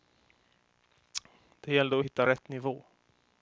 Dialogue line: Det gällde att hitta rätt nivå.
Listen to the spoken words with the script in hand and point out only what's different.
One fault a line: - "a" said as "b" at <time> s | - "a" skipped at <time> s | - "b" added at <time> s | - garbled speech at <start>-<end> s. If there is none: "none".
none